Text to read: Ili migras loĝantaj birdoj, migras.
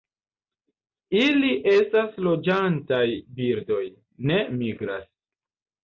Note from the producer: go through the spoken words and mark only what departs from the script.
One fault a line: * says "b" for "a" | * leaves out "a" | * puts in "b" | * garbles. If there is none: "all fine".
* says "estas" for "migras"
* puts in "ne"